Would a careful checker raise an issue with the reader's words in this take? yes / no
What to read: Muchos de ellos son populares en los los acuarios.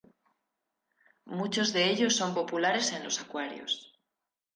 yes